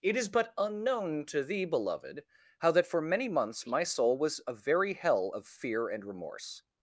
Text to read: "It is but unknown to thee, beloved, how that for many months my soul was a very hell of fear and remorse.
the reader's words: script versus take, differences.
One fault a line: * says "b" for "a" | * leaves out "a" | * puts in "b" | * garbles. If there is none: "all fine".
all fine